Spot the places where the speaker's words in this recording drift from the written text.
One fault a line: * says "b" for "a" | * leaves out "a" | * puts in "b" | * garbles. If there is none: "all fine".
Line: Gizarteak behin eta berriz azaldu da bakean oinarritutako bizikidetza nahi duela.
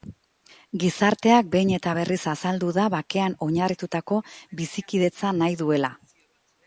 all fine